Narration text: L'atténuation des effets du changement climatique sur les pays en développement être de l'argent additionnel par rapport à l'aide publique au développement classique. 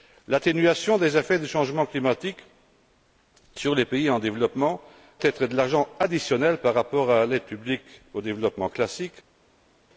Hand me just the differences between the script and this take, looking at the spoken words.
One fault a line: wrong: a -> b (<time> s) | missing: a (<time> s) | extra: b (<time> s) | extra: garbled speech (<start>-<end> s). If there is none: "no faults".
no faults